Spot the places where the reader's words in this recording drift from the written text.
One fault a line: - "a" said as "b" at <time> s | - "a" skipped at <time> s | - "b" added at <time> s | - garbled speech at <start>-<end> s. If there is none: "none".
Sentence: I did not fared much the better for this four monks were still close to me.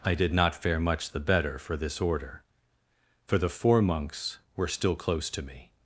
- "fared" said as "fare" at 0.6 s
- "order for the" added at 2.0 s